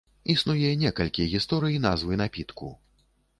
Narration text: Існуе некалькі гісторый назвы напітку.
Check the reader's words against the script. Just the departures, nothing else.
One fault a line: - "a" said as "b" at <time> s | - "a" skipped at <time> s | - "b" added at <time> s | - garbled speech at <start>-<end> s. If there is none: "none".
none